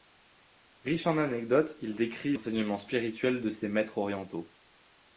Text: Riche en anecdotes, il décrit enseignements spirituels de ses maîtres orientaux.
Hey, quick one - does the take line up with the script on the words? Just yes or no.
yes